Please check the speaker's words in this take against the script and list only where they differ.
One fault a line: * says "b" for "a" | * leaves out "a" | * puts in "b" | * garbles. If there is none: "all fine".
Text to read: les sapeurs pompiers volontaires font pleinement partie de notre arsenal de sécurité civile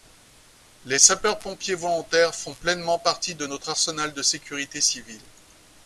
all fine